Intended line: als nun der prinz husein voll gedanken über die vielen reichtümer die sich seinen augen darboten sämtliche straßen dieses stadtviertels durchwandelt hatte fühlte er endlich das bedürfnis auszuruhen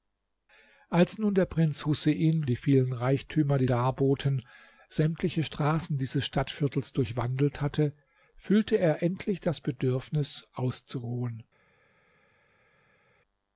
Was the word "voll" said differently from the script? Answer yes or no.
yes